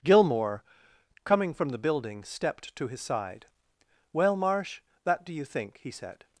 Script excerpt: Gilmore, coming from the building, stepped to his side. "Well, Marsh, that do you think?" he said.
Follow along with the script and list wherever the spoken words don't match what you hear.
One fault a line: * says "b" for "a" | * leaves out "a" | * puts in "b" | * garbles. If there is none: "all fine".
all fine